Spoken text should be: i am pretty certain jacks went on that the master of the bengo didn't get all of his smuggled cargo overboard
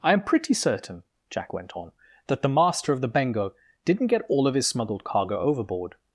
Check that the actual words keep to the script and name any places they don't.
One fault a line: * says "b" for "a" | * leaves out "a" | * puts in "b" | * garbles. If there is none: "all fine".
* says "jack" for "jacks"